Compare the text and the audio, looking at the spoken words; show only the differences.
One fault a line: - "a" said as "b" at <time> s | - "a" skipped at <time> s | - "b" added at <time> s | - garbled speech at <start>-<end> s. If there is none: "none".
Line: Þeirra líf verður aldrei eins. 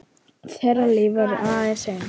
none